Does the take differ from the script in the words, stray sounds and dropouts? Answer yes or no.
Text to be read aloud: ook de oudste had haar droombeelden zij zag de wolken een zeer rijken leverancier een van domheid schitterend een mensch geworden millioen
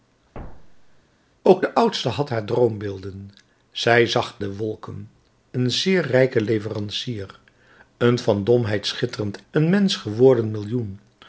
yes